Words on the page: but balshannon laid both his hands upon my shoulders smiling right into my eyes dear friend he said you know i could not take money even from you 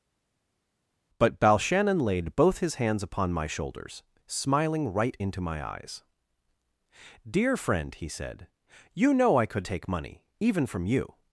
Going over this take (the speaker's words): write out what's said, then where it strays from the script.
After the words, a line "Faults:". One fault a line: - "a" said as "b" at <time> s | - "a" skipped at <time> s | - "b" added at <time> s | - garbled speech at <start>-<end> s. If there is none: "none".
but balshannon laid both his hands upon my shoulders smiling right into my eyes dear friend he said you know i could take money even from you
Faults:
- "not" skipped at 9.7 s